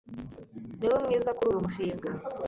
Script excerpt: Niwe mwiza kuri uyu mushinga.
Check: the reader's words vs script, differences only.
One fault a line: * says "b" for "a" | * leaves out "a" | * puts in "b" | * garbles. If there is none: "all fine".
all fine